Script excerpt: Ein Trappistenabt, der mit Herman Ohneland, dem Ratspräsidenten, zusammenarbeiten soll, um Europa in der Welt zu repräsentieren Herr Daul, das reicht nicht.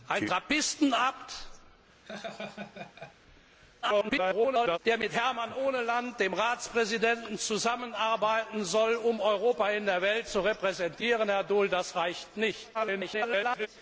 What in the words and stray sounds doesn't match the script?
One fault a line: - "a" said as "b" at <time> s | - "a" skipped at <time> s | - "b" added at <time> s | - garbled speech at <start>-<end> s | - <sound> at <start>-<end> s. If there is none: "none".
- laugh at 2.0-3.1 s
- garbled speech at 3.8-4.8 s
- garbled speech at 12.7-13.7 s